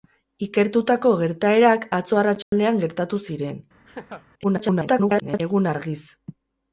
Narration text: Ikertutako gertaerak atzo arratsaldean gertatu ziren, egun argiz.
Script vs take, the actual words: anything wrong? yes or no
yes